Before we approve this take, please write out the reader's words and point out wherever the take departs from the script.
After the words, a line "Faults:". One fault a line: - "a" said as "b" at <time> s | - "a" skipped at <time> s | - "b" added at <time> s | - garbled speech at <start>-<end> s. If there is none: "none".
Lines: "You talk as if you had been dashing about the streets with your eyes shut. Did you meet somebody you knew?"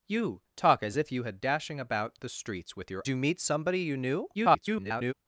"You talk as if you had dashing about the streets with your you meet somebody you knew?" [garbled]
Faults:
- "been" skipped at 1.4 s
- "eyes shut Did" skipped at 3.0 s
- garbled speech at 4.3-5.1 s